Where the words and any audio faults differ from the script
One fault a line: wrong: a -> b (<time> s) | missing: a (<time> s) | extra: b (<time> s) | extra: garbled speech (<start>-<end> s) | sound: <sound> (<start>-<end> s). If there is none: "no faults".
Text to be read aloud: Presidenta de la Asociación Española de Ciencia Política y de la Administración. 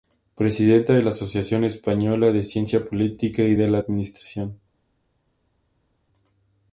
no faults